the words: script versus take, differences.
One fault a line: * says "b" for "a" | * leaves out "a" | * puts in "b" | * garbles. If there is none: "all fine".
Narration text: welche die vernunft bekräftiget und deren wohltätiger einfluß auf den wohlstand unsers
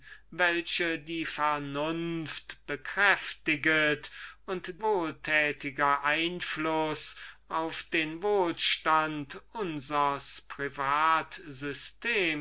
* leaves out "deren"